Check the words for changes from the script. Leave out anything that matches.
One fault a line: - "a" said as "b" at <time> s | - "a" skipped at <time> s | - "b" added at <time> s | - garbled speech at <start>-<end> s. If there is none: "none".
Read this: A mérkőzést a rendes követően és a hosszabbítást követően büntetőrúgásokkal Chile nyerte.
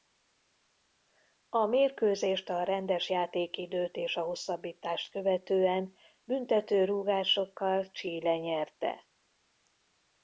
- "követően" said as "játékidőt" at 3.1 s